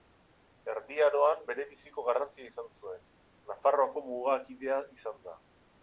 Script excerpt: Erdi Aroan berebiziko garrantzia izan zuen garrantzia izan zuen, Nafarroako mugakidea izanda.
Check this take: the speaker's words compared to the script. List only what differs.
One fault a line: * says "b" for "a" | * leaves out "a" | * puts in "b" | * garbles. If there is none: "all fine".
* leaves out "garrantzia izan zuen"